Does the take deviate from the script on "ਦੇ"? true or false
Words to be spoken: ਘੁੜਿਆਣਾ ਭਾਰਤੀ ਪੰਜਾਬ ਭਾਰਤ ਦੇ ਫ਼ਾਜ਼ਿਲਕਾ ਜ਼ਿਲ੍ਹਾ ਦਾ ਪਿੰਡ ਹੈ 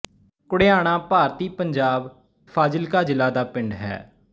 true